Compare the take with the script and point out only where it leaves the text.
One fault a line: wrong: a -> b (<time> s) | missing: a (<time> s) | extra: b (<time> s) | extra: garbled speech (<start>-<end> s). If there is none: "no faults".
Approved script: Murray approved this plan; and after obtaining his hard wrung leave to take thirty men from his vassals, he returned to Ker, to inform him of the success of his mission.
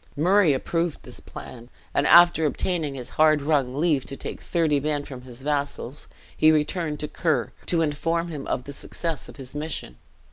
no faults